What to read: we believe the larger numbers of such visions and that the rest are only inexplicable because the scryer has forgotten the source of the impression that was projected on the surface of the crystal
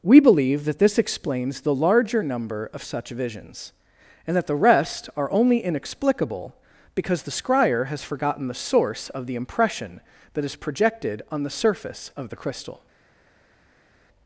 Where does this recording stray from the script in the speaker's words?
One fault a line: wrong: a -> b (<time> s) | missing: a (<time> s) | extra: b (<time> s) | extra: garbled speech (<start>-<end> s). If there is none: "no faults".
extra: that this explains (0.7 s)
wrong: numbers -> number (2.2 s)
wrong: was -> is (10.4 s)